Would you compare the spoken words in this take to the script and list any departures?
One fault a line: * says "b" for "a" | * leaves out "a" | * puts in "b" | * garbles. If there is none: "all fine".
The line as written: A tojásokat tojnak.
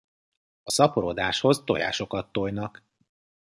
* puts in "szaporodáshoz"